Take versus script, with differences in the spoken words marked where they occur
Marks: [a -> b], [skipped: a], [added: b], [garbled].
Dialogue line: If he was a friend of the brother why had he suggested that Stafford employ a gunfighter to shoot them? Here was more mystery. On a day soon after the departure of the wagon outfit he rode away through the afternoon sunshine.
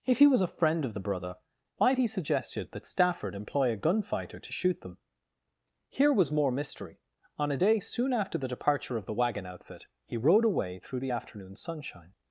If he was a friend of the brother why had he suggested that Stafford employ a gunfighter to shoot them? Here was more mystery. On a day soon after the departure of the wagon outfit he rode away through the afternoon sunshine.